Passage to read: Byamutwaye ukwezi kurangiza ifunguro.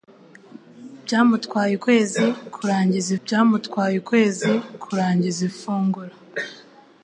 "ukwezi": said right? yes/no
yes